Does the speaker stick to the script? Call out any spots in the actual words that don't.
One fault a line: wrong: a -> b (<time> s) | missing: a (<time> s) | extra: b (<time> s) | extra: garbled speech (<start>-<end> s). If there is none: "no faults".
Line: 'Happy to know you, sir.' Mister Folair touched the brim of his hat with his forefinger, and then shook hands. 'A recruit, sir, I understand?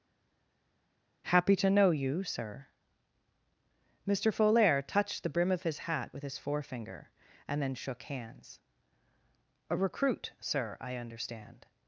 no faults